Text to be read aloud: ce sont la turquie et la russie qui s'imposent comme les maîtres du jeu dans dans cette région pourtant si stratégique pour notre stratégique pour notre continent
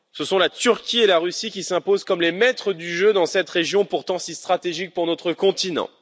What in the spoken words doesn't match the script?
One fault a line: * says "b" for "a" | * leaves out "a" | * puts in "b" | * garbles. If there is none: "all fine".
* leaves out "dans"
* leaves out "stratégique pour notre"